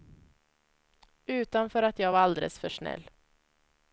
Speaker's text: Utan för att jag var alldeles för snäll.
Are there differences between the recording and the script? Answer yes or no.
no